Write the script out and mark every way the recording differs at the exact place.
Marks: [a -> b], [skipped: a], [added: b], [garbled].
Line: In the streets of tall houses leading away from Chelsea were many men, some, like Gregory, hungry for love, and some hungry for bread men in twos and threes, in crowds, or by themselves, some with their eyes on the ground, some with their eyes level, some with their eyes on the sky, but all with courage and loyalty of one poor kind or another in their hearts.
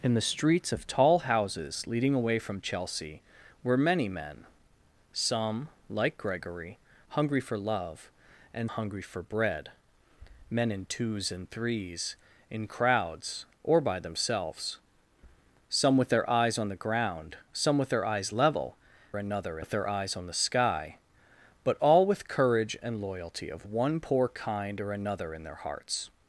In the streets of tall houses leading away from Chelsea were many men, some, like Gregory, hungry for love, and [skipped: some] hungry for bread men in twos and threes, in crowds, or by themselves, some with their eyes on the ground, some with their eyes level, [some -> another] with their eyes on the sky, but all with courage and loyalty of one poor kind or another in their hearts.